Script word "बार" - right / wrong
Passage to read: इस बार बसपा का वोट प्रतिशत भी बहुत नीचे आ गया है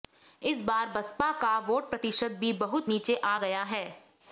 right